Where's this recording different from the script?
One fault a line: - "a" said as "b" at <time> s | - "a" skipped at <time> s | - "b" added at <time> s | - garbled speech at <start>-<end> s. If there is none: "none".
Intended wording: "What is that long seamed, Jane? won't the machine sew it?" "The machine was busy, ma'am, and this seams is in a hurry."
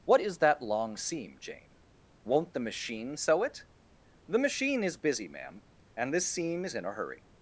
- "seamed" said as "seam" at 1.0 s
- "was" said as "is" at 4.8 s
- "seams" said as "seam" at 6.3 s